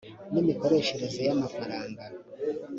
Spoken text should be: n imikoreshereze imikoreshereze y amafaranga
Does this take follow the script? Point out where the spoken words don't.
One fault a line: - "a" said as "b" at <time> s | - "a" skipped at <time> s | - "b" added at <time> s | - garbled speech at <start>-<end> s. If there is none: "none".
- "imikoreshereze" skipped at 1.2 s